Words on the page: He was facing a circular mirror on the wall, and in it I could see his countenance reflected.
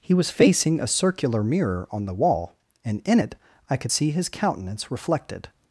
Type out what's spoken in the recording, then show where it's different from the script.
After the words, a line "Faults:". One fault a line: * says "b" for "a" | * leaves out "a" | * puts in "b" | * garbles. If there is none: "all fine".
He was facing a circular mirror on the wall, and in it I could see his countenance reflected.
Faults:
all fine